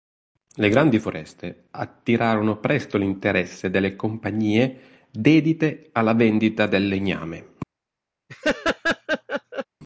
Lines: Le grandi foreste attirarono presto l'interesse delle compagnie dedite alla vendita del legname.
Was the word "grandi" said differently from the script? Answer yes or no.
no